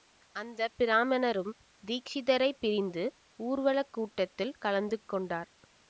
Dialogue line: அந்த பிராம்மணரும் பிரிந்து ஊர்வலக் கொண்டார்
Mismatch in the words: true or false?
true